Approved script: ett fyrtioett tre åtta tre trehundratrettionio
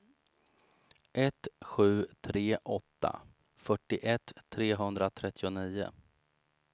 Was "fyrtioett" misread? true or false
true